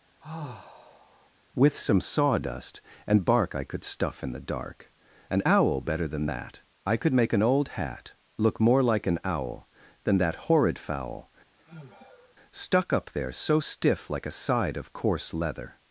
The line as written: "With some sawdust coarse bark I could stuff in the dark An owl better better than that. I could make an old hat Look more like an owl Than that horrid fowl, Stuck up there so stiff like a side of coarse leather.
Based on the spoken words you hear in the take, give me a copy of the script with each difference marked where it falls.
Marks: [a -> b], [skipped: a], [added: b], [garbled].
"With some sawdust [coarse -> and] bark I could stuff in the dark An owl better [skipped: better] than that. I could make an old hat Look more like an owl Than that horrid fowl, Stuck up there so stiff like a side of coarse leather.